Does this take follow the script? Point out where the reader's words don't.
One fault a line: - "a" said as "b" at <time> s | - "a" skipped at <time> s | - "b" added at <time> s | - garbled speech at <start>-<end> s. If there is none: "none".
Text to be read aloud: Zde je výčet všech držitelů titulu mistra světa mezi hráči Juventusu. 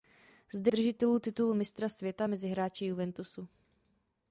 - "je výčet všech" skipped at 0.7 s